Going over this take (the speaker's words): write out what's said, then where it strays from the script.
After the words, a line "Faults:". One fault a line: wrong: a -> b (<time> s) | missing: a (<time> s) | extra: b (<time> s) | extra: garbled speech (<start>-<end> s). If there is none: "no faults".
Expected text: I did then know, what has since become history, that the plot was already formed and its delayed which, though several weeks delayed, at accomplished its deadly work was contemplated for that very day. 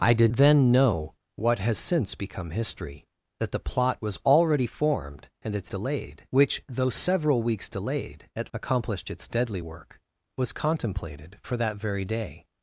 I did then know, what has since become history, that the plot was already formed and its delayed which, though several weeks delayed, at accomplished its deadly work was contemplated for that very day.
Faults:
no faults